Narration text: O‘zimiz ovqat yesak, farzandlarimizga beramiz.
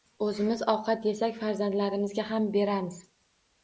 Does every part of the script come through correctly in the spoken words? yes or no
no